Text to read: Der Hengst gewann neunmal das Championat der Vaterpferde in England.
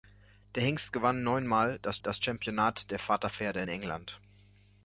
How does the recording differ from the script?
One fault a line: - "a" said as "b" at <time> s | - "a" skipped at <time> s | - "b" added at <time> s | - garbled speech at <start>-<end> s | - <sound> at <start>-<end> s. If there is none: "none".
- "das" added at 2.0 s